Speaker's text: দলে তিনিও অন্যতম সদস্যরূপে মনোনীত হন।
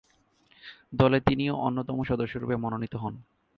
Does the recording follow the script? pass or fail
pass